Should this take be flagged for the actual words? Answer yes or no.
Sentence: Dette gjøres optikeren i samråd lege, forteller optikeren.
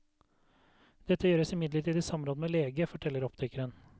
yes